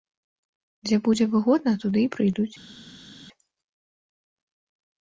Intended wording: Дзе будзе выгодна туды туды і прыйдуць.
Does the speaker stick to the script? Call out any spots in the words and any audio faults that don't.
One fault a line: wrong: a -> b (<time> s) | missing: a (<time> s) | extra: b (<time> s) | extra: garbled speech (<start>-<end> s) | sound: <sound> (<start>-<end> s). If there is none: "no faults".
missing: туды (2.0 s)